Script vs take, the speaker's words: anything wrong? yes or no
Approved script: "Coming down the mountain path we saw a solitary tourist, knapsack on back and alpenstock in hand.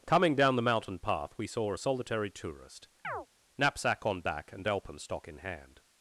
no